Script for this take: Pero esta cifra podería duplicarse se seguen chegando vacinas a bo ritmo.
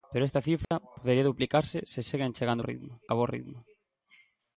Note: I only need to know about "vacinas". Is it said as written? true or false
false